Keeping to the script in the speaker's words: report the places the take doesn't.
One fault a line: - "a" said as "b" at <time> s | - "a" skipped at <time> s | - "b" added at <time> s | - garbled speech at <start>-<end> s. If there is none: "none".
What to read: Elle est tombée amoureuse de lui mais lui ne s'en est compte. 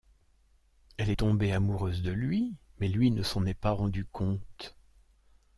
- "pas rendu" added at 3.5 s